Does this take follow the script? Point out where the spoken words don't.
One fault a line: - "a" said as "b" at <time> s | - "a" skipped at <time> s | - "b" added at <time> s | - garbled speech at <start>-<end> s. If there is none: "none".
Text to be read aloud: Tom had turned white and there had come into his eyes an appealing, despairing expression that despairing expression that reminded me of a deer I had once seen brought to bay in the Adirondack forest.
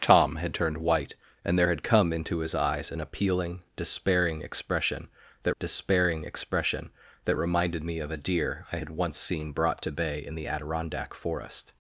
none